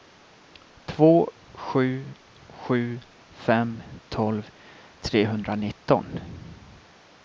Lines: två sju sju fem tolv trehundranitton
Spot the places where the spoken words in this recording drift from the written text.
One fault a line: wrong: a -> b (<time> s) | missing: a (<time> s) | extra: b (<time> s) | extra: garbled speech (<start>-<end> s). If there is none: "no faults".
no faults